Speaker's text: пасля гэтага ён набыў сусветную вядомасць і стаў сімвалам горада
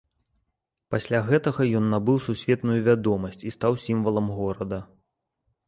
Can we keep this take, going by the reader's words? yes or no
yes